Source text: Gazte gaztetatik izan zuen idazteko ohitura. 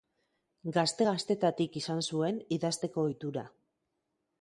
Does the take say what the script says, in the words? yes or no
yes